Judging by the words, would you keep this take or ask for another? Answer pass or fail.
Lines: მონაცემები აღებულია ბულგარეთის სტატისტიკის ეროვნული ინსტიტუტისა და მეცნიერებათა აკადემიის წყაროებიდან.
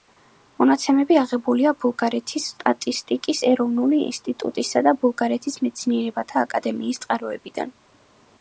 fail